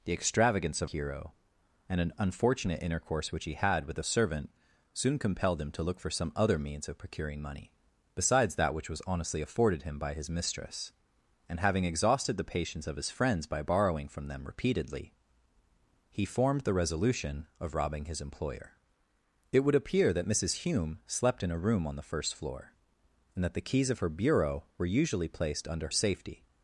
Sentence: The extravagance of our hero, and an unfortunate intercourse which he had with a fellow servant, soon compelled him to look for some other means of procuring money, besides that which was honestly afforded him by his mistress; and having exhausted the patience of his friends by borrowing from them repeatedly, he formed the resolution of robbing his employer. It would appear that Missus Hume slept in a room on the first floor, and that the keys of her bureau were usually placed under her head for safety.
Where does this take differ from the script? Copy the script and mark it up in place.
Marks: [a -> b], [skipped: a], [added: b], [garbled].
The extravagance of [skipped: our] hero, and an unfortunate intercourse which he had with a [skipped: fellow] servant, soon compelled him to look for some other means of procuring money, besides that which was honestly afforded him by his mistress; and having exhausted the patience of his friends by borrowing from them repeatedly, he formed the resolution of robbing his employer. It would appear that Missus Hume slept in a room on the first floor, and that the keys of her bureau were usually placed under [skipped: her head for] safety.